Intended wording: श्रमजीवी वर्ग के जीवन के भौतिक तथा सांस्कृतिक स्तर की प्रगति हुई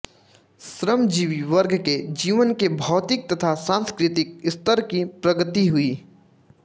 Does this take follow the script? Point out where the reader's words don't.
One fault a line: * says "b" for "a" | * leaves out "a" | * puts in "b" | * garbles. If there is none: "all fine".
all fine